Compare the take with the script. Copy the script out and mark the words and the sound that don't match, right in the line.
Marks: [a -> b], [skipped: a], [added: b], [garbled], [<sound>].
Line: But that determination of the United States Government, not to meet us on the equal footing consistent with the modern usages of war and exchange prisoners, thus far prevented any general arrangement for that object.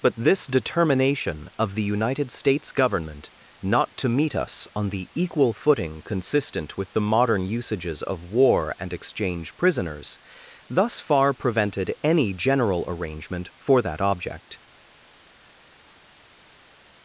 But [that -> this] determination of the United States Government, not to meet us on the equal footing consistent with the modern usages of war and exchange prisoners, thus far prevented any general arrangement for that object.